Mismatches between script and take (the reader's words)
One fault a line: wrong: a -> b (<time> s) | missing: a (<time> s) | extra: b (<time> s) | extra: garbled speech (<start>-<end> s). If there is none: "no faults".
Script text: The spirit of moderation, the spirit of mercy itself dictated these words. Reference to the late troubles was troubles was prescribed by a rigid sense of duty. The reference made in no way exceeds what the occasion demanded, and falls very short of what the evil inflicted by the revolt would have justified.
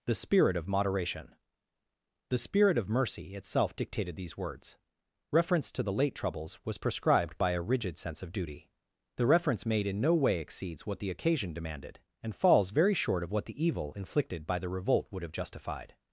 missing: troubles was (6.8 s)